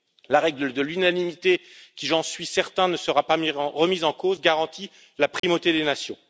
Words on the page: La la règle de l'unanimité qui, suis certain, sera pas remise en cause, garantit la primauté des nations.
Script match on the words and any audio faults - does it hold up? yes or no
no